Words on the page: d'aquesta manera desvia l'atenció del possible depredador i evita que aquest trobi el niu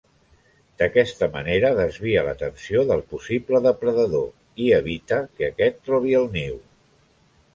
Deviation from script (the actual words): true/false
false